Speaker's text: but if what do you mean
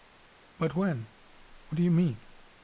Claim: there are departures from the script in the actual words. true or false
true